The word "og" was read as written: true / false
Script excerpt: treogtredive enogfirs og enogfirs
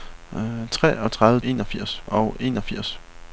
true